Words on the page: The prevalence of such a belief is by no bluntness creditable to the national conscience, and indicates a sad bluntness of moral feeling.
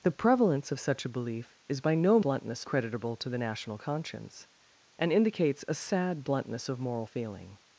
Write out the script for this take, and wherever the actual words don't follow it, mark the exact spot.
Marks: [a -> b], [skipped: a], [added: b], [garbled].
The prevalence of such a belief is by no bluntness creditable to the national conscience, and indicates a sad bluntness of moral feeling.